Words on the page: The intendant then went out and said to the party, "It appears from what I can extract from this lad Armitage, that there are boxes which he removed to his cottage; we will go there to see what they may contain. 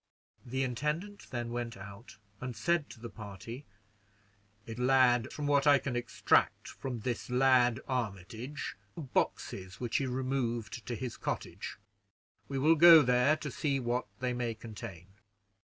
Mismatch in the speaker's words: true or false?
true